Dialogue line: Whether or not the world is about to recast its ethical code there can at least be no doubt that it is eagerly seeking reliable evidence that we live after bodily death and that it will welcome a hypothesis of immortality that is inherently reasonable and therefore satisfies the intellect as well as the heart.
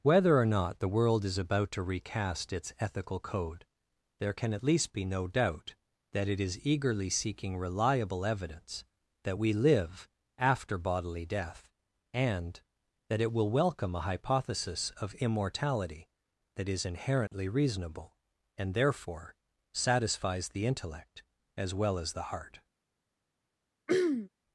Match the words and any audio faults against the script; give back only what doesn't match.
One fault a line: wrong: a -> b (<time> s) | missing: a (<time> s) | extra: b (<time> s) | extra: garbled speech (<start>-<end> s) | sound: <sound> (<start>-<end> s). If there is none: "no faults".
sound: dropout (17.3-17.3 s)
sound: throat clearing (23.9-24.3 s)